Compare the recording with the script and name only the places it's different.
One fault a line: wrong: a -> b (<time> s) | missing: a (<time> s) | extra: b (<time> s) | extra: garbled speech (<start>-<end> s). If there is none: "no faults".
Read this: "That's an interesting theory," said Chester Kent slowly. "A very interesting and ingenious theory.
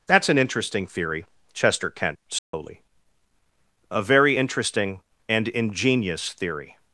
missing: said (1.2 s)